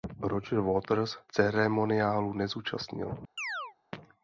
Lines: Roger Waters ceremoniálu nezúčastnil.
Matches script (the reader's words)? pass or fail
pass